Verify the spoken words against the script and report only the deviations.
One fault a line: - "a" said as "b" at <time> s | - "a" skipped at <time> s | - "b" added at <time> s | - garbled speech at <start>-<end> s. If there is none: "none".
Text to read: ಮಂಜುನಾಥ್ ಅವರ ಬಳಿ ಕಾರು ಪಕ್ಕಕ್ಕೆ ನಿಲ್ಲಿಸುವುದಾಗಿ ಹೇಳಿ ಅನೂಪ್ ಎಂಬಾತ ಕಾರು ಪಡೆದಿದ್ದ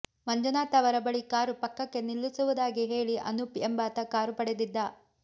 none